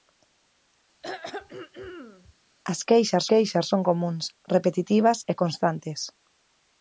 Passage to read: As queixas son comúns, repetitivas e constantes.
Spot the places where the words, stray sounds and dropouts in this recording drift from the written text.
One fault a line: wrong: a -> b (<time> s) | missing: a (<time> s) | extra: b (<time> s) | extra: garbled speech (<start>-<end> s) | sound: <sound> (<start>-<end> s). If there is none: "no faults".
sound: throat clearing (1.0-2.3 s)
extra: queixas (3.3 s)